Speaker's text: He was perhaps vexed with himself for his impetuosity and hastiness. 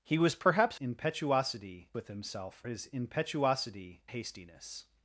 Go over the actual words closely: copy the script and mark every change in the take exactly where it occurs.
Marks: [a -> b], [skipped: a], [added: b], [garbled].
He was perhaps [vexed -> impetuosity] with himself [skipped: for] his impetuosity [skipped: and] hastiness.